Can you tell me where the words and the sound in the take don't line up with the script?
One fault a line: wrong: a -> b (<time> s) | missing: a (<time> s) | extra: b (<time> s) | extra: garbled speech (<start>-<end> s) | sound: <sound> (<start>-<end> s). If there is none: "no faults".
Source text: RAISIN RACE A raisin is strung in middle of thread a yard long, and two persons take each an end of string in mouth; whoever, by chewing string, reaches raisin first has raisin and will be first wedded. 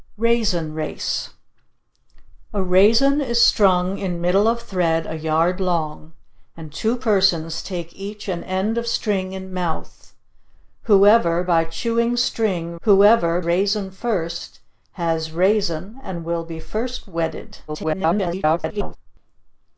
wrong: reaches -> whoever (12.8 s)
extra: garbled speech (17.7-19.0 s)